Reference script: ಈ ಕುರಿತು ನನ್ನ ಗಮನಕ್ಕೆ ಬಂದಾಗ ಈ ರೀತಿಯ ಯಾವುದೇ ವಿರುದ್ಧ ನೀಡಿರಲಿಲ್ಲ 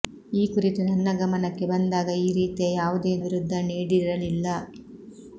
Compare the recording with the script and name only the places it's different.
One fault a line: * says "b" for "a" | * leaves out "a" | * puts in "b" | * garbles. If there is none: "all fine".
all fine